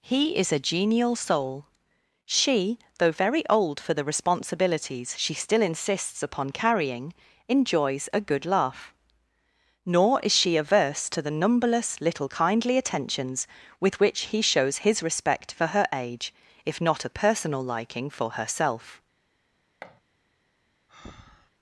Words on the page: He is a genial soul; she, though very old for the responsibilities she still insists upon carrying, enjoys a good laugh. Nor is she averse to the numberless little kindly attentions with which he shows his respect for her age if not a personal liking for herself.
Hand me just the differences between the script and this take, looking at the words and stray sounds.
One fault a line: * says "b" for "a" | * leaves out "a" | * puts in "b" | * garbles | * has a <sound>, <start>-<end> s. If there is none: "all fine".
* has a thud, 19.8-20.0 s
* has a breath, 20.9-21.5 s